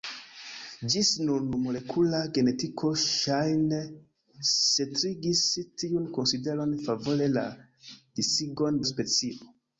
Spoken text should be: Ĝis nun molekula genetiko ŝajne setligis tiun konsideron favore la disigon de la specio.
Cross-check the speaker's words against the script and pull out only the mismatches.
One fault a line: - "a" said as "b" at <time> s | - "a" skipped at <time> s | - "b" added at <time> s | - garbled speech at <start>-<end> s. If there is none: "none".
- "de" skipped at 8.8 s